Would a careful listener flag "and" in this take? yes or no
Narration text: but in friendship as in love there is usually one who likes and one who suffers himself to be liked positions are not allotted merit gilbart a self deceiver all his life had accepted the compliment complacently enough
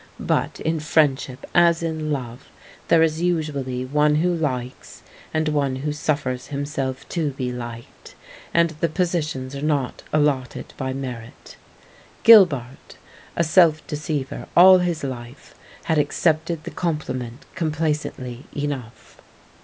no